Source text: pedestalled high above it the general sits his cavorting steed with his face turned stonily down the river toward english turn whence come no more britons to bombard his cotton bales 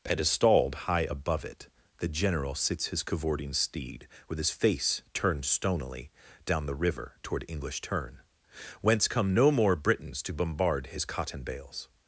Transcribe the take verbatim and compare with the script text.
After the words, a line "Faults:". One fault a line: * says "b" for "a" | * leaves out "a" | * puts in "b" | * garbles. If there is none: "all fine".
pedestalled high above it the general sits his cavorting steed with his face turned stonily down the river toward english turn whence come no more britons to bombard his cotton bales
Faults:
all fine